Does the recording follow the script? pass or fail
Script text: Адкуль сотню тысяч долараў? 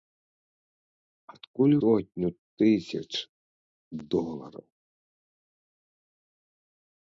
pass